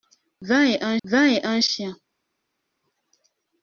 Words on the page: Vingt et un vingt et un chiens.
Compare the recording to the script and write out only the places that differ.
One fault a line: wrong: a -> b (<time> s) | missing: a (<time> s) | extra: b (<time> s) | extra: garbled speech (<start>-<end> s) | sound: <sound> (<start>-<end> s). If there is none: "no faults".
no faults